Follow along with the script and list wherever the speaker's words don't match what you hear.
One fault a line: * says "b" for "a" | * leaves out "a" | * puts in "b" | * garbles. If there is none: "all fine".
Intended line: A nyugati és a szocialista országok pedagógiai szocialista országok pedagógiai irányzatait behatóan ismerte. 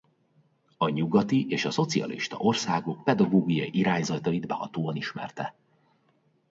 * leaves out "szocialista országok pedagógiai"